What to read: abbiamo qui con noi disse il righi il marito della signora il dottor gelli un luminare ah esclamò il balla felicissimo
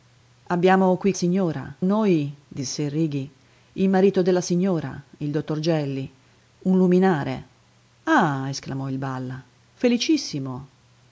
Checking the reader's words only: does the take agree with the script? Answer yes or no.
no